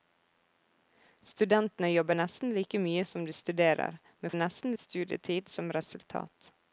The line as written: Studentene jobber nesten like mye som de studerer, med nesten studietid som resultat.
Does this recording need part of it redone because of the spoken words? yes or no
no